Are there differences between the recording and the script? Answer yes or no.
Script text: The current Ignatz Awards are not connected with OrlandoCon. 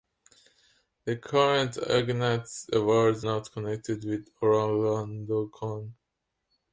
yes